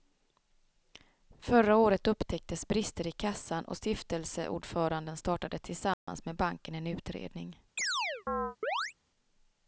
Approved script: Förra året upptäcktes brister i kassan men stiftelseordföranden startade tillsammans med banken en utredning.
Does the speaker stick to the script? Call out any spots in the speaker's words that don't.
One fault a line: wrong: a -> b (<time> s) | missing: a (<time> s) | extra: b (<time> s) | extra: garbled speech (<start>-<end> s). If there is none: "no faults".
wrong: men -> och (3.6 s)